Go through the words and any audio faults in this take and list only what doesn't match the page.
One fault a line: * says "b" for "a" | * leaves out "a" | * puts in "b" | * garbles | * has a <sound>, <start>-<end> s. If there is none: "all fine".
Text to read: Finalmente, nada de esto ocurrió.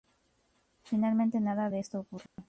* has a dropout, 2.3-2.4 s